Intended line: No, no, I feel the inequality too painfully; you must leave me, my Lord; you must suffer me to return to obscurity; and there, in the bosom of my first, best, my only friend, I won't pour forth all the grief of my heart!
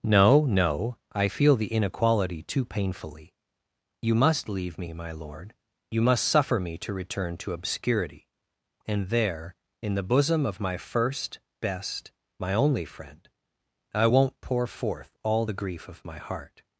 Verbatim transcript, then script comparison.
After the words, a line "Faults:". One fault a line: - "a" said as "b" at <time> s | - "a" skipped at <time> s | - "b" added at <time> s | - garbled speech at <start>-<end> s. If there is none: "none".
No, no, I feel the inequality too painfully; you must leave me, my Lord; you must suffer me to return to obscurity; and there, in the bosom of my first, best, my only friend, I won't pour forth all the grief of my heart!
Faults:
none